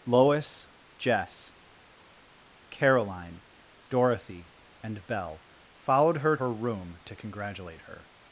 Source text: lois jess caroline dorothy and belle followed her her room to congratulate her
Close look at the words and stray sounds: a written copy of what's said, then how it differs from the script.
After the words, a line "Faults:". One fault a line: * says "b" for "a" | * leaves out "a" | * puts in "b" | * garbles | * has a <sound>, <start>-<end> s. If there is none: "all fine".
lois jess caroline dorothy and belle followed her her room to congratulate her
Faults:
all fine